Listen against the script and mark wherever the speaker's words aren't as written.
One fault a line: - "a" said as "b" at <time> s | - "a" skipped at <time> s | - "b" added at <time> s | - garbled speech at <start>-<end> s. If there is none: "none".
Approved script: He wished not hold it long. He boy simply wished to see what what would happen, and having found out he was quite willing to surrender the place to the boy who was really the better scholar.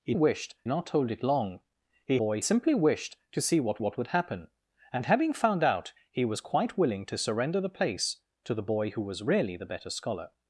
none